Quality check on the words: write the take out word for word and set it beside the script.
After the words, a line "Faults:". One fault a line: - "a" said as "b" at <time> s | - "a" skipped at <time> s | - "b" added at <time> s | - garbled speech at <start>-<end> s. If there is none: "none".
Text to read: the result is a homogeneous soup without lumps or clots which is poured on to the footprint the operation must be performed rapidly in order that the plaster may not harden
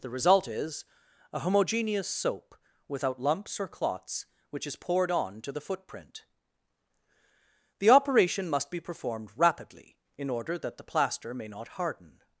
the result is a homogeneous soap without lumps or clots which is poured on to the footprint the operation must be performed rapidly in order that the plaster may not harden
Faults:
- "soup" said as "soap" at 2.1 s